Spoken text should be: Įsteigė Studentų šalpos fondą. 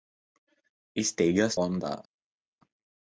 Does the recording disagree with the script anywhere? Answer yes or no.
yes